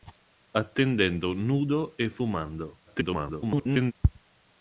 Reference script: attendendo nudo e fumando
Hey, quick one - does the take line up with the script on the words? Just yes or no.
no